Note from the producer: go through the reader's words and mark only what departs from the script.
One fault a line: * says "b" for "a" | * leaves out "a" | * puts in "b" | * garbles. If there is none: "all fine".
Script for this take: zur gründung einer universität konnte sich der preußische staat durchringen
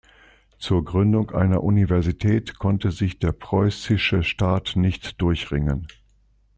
* puts in "nicht"